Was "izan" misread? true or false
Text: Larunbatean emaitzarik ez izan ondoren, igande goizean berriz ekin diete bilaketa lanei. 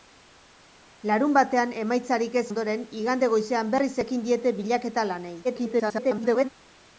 true